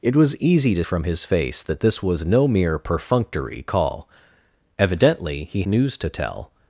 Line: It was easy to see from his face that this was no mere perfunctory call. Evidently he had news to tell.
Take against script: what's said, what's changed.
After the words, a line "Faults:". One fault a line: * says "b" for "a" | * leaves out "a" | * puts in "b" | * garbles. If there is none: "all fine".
It was easy to from his face that this was no mere perfunctory call. Evidently he news to tell.
Faults:
* leaves out "see"
* leaves out "had"